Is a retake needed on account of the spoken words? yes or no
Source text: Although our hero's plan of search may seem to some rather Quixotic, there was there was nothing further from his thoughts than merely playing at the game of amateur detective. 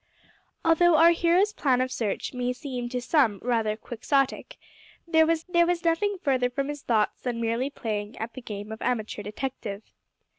no